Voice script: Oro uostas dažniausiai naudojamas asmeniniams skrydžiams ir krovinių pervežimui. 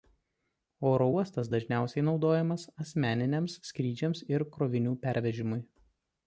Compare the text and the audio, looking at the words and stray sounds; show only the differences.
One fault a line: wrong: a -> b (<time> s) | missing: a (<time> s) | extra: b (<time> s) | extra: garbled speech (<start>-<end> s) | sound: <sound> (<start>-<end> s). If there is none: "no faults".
no faults